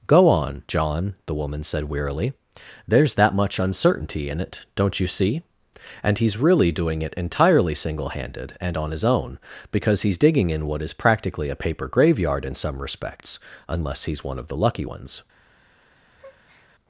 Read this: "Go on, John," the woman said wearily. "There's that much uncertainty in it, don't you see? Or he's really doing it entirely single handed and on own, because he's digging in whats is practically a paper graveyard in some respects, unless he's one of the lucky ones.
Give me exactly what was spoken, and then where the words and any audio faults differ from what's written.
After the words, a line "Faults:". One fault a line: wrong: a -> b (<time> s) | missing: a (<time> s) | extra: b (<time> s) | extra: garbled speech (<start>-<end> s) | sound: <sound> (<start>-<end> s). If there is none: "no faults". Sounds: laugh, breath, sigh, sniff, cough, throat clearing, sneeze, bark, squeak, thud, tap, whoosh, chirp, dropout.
"Go on, John," the woman said wearily. "There's that much uncertainty in it, don't you see? And he's really doing it entirely single handed and on his own, because he's digging in what is practically a paper graveyard in some respects, unless he's one of the lucky ones.
Faults:
wrong: Or -> And (6.0 s)
extra: his (8.9 s)
wrong: whats -> what (10.7 s)
sound: breath (16.2-16.7 s)